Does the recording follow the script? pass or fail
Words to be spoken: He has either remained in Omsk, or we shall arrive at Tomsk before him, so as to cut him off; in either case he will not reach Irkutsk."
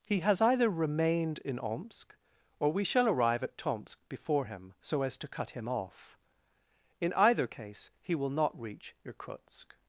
pass